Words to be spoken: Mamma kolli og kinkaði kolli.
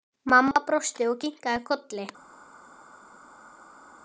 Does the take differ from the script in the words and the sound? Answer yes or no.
yes